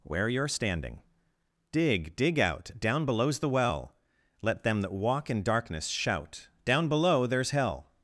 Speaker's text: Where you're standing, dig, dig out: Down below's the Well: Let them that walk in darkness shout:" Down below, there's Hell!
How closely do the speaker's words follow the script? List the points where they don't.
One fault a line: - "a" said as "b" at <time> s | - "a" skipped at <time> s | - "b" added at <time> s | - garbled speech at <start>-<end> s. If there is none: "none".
none